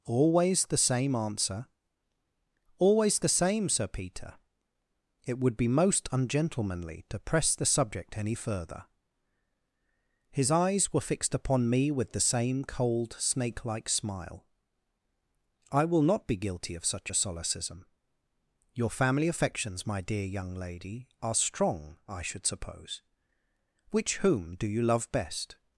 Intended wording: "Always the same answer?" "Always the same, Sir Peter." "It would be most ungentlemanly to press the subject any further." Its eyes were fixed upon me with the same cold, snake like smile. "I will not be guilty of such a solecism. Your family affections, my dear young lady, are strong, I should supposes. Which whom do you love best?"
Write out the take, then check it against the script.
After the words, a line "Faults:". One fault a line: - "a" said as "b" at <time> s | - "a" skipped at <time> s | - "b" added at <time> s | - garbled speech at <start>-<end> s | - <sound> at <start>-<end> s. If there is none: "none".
"Always the same answer?" "Always the same, Sir Peter." "It would be most ungentlemanly to press the subject any further." His eyes were fixed upon me with the same cold, snake like smile. "I will not be guilty of such a solecism. Your family affections, my dear young lady, are strong, I should suppose. Which whom do you love best?"
Faults:
- "Its" said as "His" at 10.3 s
- "supposes" said as "suppose" at 22.5 s